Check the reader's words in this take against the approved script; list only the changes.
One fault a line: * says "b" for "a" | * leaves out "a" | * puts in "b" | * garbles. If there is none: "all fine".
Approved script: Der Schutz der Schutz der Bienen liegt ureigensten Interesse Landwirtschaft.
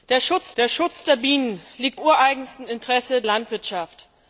all fine